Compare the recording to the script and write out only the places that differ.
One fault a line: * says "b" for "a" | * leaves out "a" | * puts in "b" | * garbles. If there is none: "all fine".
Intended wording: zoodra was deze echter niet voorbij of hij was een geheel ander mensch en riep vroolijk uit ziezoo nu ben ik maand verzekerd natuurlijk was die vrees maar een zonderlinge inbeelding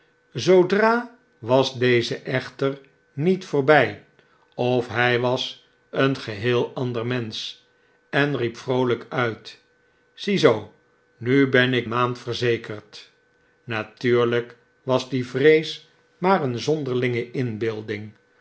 all fine